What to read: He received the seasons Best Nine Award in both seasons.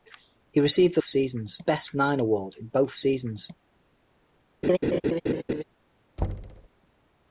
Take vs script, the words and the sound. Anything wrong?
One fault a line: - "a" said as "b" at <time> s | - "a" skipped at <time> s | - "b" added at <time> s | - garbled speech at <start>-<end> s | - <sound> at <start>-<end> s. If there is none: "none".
- laugh at 4.6-5.6 s
- thud at 6.2-6.7 s